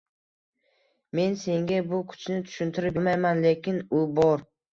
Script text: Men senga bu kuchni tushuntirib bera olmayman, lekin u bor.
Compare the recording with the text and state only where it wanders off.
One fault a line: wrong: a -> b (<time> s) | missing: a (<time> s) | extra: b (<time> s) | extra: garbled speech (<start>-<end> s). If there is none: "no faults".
missing: bera (3.0 s)